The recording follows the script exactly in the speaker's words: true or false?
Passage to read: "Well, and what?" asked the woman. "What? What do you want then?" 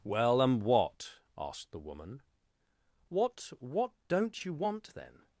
false